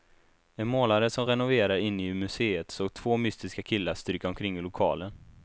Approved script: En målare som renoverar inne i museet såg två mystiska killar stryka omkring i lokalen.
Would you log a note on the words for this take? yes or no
no